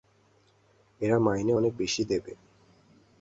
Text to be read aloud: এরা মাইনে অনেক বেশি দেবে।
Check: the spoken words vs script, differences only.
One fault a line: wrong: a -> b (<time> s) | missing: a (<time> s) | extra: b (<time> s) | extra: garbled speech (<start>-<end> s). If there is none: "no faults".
no faults